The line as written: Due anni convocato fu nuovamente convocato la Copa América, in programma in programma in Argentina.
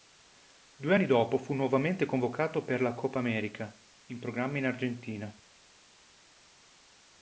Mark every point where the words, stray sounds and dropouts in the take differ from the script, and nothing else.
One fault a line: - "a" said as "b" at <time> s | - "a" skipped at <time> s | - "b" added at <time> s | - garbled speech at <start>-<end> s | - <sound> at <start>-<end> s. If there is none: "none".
- "convocato" said as "dopo" at 1.1 s
- "per" added at 2.6 s
- "programma in" skipped at 4.6 s